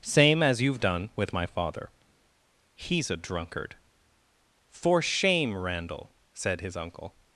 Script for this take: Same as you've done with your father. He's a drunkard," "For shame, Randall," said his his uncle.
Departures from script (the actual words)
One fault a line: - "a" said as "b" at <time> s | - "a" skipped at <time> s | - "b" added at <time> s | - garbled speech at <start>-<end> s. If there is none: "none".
- "your" said as "my" at 1.3 s
- "his" skipped at 6.8 s